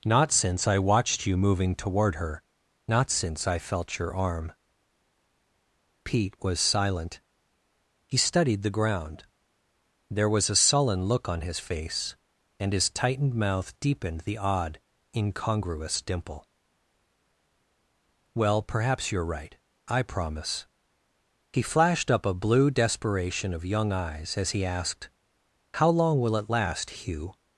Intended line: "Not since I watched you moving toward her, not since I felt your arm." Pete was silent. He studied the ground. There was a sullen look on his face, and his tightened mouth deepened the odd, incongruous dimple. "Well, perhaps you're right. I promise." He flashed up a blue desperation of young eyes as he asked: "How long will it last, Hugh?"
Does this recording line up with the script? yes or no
yes